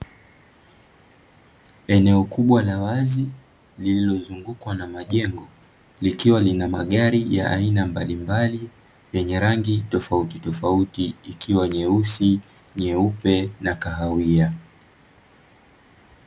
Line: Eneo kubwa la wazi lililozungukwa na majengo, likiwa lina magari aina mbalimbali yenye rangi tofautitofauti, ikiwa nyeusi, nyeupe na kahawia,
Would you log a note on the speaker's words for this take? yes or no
yes